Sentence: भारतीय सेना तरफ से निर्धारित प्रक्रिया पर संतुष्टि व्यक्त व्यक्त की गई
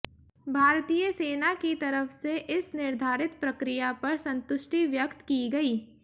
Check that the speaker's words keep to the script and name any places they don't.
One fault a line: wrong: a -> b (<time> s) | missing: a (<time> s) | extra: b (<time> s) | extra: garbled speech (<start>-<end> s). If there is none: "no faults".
extra: की (1.5 s)
extra: इस (2.5 s)
missing: व्यक्त (5.2 s)